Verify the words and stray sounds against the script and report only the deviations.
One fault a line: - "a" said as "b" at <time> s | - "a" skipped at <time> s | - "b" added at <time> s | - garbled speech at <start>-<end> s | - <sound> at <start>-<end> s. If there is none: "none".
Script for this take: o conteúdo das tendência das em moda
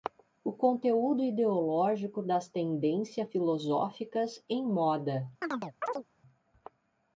- "ideológico" added at 1.2 s
- "das" said as "filosóficas" at 3.2 s
- chirp at 5.4-6.0 s